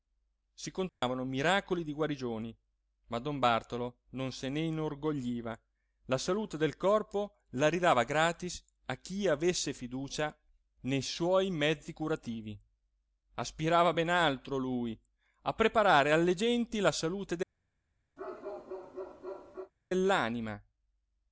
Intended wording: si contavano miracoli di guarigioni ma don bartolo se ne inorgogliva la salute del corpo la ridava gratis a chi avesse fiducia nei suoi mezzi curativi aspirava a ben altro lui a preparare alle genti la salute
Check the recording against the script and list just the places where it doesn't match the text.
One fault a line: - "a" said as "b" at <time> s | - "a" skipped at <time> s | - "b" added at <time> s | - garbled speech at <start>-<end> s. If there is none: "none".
- "non" added at 4.1 s